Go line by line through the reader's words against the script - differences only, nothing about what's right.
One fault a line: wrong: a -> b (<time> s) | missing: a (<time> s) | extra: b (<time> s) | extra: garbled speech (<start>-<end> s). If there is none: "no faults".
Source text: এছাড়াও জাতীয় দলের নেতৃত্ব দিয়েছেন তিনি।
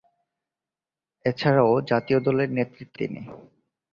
missing: দিয়েছেন (3.0 s)